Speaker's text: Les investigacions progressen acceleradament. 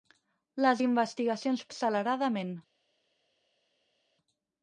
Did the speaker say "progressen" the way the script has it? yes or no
no